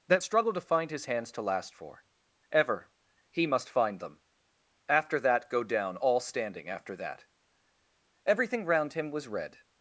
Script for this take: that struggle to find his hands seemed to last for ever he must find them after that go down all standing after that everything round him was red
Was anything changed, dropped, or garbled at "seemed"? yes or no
yes